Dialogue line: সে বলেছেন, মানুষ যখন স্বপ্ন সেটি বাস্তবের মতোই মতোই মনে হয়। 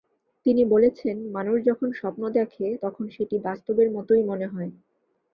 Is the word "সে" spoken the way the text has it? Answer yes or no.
no